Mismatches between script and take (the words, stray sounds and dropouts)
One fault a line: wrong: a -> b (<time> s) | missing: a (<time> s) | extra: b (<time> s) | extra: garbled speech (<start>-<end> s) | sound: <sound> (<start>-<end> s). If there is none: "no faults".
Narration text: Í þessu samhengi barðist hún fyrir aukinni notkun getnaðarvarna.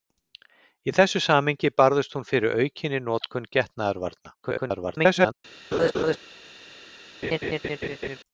extra: garbled speech (4.4-5.4 s)
sound: laugh (5.7-6.2 s)
sound: laugh (7.2-8.2 s)